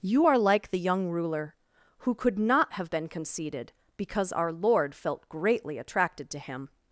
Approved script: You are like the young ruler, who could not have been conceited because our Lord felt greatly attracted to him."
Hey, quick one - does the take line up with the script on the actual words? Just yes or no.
yes